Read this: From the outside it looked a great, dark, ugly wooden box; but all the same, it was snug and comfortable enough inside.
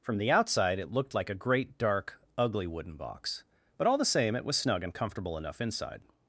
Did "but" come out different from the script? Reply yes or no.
no